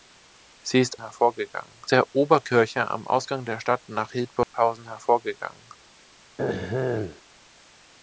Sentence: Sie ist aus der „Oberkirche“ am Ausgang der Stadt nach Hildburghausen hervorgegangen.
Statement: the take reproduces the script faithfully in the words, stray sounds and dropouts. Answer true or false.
false